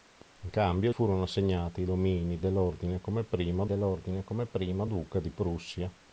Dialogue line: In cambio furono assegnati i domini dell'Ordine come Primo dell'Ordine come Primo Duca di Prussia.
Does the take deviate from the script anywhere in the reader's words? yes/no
no